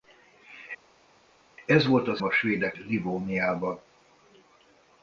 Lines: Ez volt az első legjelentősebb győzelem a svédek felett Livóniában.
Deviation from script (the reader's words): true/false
true